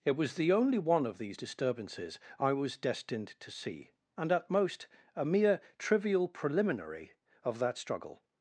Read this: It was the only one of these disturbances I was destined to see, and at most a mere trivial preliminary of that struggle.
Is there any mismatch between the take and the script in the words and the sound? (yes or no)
no